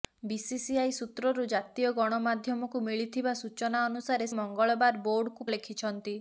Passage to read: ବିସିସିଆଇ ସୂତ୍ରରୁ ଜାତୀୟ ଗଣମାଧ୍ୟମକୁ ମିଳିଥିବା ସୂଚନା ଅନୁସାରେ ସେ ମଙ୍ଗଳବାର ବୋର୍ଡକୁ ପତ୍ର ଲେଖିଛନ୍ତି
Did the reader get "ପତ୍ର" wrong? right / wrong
wrong